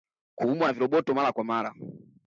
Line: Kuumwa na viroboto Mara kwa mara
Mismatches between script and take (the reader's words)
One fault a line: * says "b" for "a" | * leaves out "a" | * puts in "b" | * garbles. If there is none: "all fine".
all fine